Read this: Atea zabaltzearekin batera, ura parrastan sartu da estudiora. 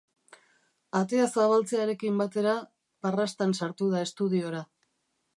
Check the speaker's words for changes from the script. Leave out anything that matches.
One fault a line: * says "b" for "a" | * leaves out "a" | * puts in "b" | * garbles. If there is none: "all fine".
* leaves out "ura"